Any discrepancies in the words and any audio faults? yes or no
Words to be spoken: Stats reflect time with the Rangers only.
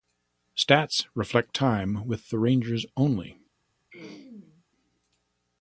yes